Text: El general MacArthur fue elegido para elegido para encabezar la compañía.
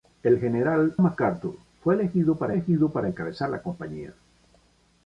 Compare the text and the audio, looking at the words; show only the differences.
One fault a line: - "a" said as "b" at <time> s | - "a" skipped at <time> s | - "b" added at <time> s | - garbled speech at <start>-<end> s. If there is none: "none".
none